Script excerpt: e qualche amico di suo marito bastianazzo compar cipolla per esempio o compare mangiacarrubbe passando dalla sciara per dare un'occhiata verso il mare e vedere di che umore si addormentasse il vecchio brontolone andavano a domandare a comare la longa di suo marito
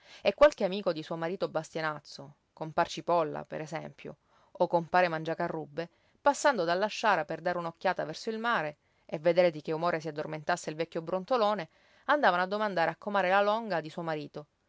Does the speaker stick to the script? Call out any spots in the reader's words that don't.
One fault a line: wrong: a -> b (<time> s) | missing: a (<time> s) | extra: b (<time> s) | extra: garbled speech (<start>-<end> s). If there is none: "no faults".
no faults